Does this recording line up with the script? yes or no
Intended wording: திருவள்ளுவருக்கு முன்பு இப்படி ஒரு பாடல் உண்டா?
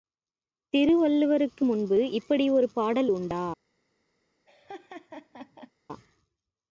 yes